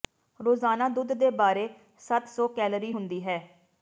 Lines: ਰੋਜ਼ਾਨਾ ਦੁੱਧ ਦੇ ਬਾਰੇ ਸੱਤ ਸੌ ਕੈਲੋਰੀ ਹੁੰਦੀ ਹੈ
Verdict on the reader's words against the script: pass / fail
pass